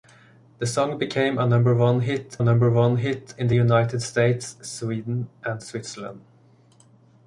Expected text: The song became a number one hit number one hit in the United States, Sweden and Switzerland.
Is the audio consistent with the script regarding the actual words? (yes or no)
yes